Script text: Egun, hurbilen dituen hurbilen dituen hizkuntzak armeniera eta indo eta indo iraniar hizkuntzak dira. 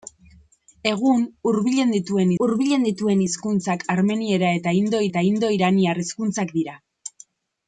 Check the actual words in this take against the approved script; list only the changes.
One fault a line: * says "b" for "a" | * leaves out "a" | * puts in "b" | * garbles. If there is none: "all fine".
all fine